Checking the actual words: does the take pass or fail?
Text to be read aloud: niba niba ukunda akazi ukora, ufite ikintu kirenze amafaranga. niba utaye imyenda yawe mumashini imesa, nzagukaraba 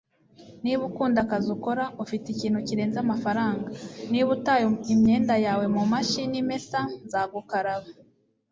fail